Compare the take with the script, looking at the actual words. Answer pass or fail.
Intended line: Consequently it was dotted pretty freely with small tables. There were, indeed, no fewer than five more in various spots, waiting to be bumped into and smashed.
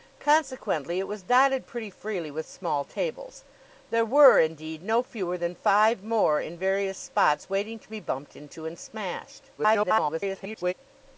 fail